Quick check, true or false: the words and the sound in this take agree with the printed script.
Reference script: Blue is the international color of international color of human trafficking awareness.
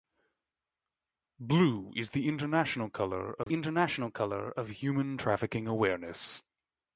false